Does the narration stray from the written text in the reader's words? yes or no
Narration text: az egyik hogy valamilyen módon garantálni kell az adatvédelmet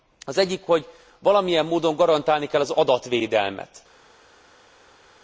no